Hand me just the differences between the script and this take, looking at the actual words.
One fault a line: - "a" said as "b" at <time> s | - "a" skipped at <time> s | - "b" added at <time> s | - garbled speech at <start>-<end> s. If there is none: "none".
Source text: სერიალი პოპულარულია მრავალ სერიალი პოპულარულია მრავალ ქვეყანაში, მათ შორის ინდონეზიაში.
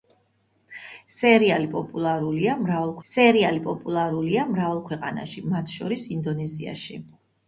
none